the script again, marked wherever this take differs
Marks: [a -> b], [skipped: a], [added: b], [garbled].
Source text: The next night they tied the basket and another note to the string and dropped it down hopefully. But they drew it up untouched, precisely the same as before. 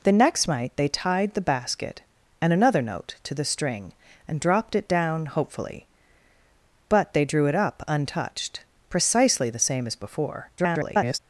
The next night they tied the basket and another note to the string and dropped it down hopefully. But they drew it up untouched, precisely the same as before. [garbled]